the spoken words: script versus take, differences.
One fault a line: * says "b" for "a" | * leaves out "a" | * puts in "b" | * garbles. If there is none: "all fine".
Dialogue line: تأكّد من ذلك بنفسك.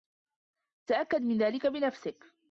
all fine